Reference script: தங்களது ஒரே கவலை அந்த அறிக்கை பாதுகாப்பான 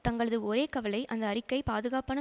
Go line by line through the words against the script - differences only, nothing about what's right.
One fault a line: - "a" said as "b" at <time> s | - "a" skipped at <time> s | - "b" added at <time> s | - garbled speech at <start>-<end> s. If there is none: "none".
none